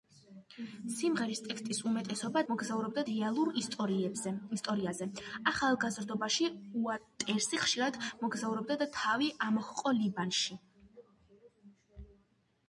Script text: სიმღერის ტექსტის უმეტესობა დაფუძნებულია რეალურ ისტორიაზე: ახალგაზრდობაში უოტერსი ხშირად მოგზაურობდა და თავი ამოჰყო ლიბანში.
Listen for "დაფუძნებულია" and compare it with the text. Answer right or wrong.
wrong